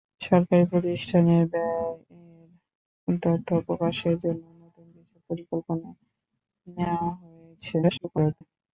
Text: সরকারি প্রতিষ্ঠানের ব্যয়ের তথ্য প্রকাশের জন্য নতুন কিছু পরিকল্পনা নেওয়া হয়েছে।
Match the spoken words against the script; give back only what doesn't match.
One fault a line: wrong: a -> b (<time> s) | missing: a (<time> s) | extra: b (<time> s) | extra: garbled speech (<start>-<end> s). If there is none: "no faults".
extra: garbled speech (7.8-8.4 s)